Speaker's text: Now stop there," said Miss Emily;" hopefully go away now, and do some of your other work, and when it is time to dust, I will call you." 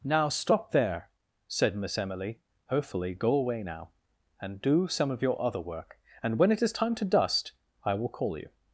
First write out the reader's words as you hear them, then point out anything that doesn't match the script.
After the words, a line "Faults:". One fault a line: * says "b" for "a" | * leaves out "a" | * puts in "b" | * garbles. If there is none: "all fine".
Now stop there," said Miss Emily;" hopefully go away now, and do some of your other work, and when it is time to dust, I will call you."
Faults:
all fine